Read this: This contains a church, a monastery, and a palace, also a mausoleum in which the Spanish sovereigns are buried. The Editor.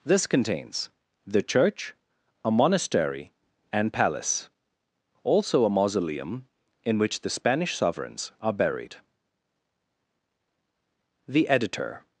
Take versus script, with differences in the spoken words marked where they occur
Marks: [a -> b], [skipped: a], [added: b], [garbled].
This contains [a -> the] church, a monastery, and [skipped: a] palace, also a mausoleum in which the Spanish sovereigns are buried. The Editor.